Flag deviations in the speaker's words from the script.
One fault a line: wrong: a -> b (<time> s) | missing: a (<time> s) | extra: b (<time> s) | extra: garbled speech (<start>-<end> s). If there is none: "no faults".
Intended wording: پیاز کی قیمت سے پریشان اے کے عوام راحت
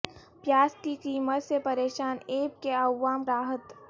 no faults